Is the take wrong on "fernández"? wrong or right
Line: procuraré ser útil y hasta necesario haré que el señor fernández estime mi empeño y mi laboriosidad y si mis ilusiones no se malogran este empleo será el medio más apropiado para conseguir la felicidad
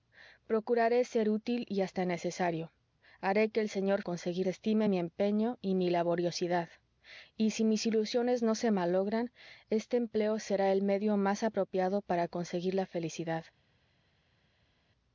wrong